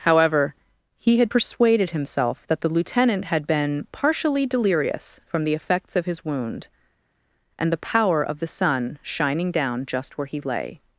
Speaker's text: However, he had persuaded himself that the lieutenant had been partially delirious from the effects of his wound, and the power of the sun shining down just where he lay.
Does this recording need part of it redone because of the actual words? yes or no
no